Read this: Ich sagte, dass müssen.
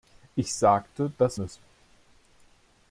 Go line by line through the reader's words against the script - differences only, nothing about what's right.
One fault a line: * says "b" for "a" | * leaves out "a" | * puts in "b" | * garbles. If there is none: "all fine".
all fine